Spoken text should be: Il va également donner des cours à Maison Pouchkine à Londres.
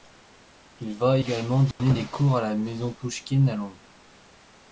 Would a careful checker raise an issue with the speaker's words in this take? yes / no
yes